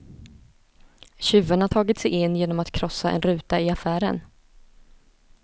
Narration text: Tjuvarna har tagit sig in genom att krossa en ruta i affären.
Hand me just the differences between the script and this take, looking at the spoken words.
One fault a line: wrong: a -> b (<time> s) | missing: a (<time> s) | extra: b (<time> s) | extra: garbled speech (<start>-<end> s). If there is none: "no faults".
no faults